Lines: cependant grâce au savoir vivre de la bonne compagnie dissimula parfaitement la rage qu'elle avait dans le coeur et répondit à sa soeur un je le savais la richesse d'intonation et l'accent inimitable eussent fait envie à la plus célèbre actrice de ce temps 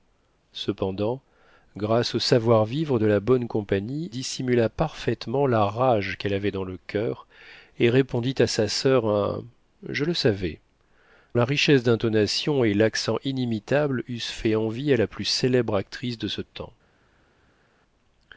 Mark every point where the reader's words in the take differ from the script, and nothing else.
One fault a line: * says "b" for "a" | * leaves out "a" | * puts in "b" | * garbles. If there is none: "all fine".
all fine